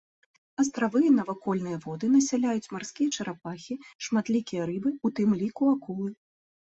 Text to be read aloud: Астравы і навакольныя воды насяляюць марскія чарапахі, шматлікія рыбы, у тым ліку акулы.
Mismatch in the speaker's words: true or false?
false